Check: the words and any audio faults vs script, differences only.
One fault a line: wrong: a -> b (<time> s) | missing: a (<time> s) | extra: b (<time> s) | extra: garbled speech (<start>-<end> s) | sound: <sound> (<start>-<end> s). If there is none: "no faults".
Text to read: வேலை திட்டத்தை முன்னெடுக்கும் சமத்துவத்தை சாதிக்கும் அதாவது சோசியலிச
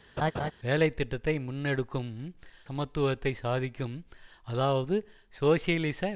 sound: laugh (0.2-0.5 s)